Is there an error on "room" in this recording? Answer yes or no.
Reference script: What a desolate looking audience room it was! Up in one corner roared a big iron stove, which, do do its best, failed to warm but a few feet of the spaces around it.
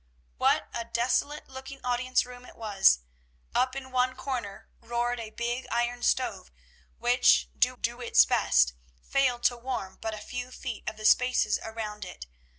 no